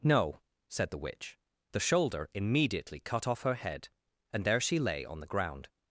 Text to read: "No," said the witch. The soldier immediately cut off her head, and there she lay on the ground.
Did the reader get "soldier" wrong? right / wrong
wrong